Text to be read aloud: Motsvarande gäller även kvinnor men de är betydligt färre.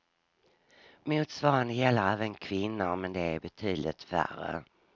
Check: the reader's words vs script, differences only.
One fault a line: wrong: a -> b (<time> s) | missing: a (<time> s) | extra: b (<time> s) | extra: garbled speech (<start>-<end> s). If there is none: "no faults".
no faults